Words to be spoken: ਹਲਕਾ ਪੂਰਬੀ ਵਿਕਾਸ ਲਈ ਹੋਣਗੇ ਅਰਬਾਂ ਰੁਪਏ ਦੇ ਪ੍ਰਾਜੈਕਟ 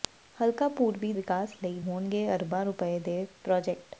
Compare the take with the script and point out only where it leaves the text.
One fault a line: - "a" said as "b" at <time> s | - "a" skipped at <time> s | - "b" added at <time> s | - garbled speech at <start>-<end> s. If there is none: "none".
none